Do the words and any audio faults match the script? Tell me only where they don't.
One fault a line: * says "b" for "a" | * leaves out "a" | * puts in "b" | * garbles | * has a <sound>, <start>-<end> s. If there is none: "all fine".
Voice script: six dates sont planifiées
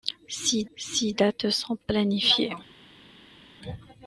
* puts in "six"